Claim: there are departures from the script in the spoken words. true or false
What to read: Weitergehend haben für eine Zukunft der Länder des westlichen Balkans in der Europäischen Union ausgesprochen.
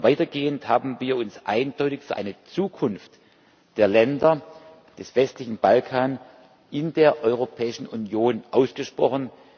true